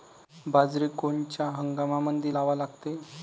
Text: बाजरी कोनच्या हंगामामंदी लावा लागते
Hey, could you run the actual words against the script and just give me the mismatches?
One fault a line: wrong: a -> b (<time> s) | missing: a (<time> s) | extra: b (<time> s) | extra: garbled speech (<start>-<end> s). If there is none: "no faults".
no faults